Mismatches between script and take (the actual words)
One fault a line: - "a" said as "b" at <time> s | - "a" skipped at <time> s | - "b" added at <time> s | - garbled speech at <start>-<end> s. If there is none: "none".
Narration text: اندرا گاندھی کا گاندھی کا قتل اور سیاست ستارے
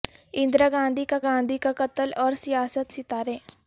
none